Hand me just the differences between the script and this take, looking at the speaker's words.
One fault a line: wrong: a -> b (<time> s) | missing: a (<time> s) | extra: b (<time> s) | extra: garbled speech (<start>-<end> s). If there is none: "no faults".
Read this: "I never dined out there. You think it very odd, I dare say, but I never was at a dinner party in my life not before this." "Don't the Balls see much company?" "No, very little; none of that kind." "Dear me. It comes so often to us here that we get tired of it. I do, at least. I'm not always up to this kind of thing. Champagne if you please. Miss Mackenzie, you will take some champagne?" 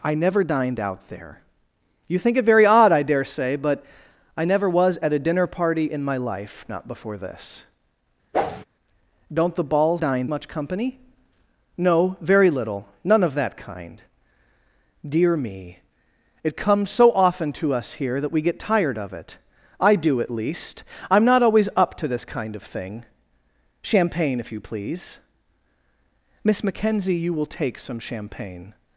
wrong: see -> dined (10.0 s)